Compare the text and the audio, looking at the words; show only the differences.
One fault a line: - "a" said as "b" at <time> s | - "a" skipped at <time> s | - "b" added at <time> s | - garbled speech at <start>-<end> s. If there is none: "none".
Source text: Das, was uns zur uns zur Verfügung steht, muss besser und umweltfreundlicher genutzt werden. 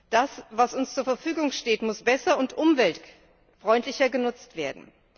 - "uns zur" skipped at 1.0 s